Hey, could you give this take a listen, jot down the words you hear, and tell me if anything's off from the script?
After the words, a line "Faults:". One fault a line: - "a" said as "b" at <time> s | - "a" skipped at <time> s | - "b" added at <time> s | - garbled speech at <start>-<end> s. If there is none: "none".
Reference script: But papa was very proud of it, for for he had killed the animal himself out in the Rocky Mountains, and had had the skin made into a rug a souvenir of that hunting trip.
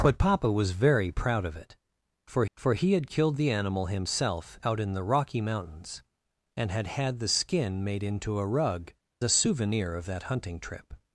But papa was very proud of it, for for he had killed the animal himself out in the Rocky Mountains, and had had the skin made into a rug a souvenir of that hunting trip.
Faults:
none